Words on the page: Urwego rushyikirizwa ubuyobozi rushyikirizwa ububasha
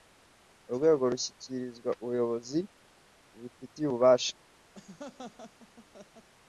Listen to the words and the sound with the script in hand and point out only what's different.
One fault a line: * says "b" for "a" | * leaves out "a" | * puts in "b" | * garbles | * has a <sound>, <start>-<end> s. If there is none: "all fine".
* says "bubifitiye" for "rushyikirizwa"
* has a laugh, 4.7-6.3 s